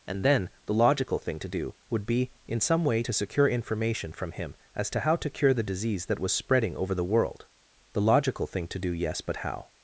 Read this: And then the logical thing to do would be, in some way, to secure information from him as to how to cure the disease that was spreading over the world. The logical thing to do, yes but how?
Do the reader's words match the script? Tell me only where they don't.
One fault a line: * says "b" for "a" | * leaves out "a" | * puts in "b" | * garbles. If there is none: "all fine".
all fine